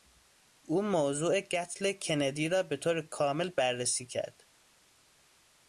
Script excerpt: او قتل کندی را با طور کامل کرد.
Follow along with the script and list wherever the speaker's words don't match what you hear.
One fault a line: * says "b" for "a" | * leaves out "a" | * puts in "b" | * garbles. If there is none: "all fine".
* puts in "موضوع"
* says "به" for "با"
* puts in "بررسی"